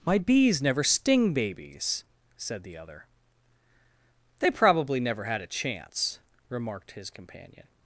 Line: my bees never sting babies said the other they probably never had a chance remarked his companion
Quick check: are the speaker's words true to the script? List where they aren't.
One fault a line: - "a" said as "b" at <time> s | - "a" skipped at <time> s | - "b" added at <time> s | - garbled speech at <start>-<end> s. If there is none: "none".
none